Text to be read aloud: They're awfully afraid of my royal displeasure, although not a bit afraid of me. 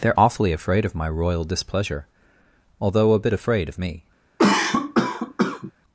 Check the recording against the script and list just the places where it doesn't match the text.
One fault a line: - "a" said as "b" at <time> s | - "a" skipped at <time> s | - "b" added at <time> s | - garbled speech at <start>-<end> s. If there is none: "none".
- "not" skipped at 3.1 s